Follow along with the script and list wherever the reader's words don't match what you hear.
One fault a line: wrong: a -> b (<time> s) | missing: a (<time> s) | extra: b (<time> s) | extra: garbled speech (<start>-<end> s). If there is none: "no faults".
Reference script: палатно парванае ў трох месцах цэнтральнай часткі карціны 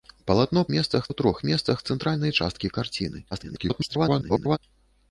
wrong: парванае -> месцах (0.7 s)
extra: garbled speech (3.3-4.6 s)